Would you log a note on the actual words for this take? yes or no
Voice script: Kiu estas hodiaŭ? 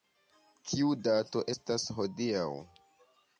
yes